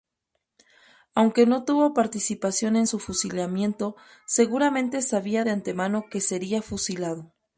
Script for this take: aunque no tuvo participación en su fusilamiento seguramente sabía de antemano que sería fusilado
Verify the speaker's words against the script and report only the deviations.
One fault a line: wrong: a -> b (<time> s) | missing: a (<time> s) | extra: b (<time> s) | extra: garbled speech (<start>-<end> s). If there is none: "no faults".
no faults